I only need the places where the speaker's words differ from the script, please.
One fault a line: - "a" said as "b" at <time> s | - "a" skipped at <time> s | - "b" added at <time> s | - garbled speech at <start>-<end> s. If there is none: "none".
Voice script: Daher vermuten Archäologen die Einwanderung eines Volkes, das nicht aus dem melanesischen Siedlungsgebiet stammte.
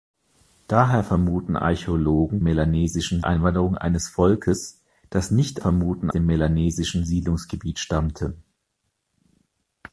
- "die" said as "melanesischen" at 2.4 s
- "aus" said as "vermuten" at 5.6 s